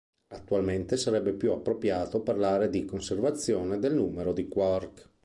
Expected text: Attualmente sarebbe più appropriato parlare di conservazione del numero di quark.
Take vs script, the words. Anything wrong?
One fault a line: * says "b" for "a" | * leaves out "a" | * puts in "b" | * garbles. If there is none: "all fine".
all fine